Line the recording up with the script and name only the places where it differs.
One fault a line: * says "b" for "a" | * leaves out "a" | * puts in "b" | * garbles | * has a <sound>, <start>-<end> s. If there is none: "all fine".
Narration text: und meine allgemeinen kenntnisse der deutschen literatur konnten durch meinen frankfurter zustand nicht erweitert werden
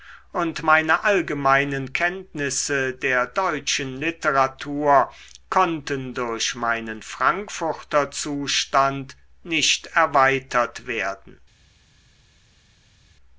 all fine